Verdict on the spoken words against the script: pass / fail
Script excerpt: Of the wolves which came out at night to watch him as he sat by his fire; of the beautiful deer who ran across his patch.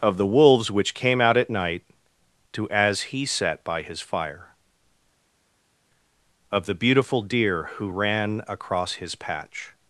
fail